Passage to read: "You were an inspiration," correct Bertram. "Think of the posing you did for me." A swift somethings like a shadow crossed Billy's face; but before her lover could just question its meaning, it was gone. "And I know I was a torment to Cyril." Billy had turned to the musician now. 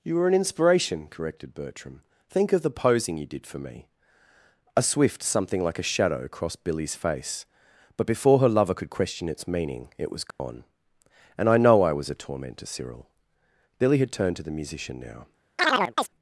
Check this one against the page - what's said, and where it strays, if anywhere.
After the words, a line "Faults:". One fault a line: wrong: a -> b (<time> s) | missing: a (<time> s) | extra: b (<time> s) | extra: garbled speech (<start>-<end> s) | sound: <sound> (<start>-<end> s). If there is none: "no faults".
"You were an inspiration," corrected Bertram. "Think of the posing you did for me." A swift something like a shadow crossed Billy's face; but before her lover could question its meaning, it was gone. "And I know I was a torment to Cyril." Billy had turned to the musician now.
Faults:
wrong: correct -> corrected (1.1 s)
wrong: somethings -> something (5.2 s)
missing: just (8.9 s)
sound: dropout (10.3-10.4 s)
sound: chirp (15.6-16.1 s)